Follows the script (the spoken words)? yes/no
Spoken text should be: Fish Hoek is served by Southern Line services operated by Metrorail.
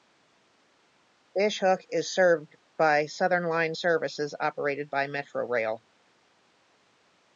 yes